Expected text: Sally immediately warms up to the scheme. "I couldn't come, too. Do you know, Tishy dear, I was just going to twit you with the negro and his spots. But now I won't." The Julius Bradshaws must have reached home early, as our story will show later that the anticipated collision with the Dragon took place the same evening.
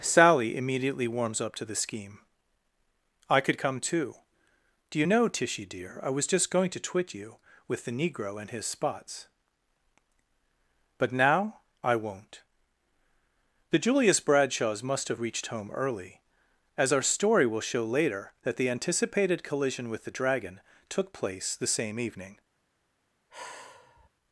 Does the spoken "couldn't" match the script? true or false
false